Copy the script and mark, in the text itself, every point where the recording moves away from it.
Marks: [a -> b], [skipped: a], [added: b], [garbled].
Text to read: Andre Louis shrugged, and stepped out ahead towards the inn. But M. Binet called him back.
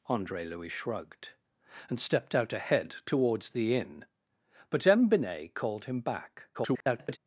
Andre Louis shrugged, and stepped out ahead towards the inn. But M. Binet called him back. [garbled]